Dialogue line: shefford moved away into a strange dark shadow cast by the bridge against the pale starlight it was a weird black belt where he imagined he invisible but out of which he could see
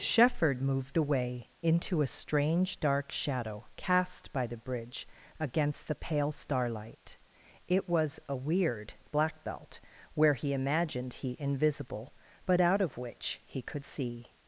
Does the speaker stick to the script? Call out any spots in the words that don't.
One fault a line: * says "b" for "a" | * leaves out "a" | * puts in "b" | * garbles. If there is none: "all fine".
all fine